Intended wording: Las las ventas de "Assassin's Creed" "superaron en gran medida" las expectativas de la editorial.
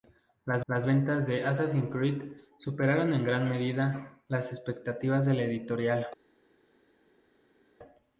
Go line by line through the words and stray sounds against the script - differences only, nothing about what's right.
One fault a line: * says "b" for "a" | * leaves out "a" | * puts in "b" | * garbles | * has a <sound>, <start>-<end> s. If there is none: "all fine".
all fine